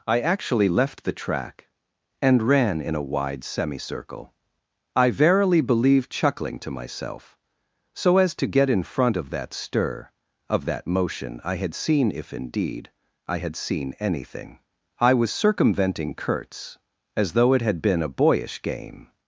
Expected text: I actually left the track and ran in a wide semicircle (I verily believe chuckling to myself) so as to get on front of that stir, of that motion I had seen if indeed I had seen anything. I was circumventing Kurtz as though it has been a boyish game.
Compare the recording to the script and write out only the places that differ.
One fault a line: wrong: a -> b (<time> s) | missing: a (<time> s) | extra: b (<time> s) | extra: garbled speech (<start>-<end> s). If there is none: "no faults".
wrong: on -> in (8.7 s)
wrong: has -> had (17.6 s)